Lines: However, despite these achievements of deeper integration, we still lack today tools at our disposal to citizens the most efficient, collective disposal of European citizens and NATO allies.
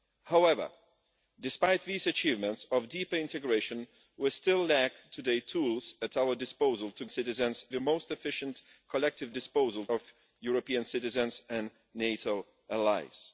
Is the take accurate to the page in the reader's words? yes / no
yes